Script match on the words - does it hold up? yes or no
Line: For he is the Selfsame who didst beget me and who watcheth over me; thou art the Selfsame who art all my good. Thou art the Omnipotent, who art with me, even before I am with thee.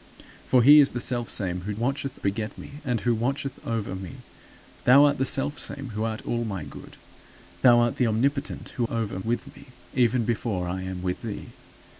no